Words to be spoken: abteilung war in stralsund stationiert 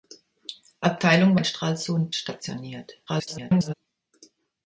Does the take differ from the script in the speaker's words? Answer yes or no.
yes